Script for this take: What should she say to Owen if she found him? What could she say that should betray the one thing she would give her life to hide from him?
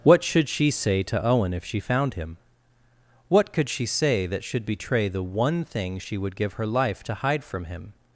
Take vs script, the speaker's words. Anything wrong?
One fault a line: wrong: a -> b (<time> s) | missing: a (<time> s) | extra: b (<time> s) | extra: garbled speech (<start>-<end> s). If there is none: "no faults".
no faults